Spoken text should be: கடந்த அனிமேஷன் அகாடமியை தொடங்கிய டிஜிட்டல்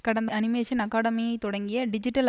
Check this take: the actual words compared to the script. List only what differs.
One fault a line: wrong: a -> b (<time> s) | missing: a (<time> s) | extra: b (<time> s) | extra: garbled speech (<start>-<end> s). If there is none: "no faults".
no faults